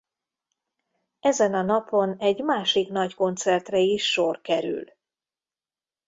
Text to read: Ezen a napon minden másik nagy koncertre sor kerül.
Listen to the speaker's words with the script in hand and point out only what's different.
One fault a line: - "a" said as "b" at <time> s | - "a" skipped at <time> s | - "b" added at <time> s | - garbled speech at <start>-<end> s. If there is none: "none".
- "minden" said as "egy" at 2.2 s
- "is" added at 3.8 s